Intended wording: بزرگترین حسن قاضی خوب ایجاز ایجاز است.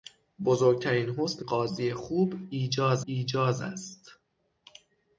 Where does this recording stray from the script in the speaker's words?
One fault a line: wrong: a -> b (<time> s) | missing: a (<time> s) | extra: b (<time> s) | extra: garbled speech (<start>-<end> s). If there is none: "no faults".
no faults